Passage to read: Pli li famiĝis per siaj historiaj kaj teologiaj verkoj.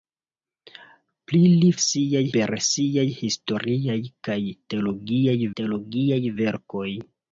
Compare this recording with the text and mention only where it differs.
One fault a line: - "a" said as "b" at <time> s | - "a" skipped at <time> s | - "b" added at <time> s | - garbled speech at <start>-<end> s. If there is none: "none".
- "famiĝis" said as "siaj" at 1.9 s
- "teologiaj" added at 5.6 s